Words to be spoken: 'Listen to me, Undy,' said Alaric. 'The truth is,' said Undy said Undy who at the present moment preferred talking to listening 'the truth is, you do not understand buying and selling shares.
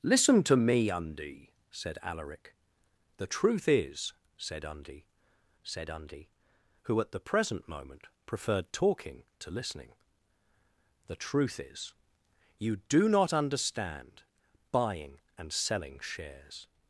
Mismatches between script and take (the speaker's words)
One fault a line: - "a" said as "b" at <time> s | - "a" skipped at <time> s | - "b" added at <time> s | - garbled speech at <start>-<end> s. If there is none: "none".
none